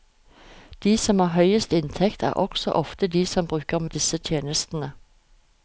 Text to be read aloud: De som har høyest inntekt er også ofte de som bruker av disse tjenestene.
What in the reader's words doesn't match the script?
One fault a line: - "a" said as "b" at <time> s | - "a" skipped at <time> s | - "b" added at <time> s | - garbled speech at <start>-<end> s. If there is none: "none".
none